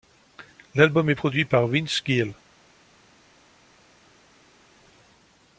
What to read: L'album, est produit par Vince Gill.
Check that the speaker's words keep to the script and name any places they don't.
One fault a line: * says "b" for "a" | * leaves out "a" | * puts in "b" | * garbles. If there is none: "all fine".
all fine